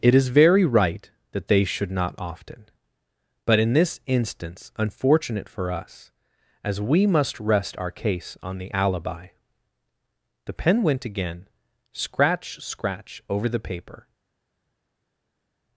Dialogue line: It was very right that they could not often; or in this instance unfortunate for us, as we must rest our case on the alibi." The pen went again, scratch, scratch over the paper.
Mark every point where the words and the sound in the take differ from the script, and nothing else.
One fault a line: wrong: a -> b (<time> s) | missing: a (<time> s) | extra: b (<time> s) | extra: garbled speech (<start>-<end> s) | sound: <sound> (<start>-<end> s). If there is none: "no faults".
wrong: was -> is (0.1 s)
wrong: could -> should (1.6 s)
wrong: or -> but (3.5 s)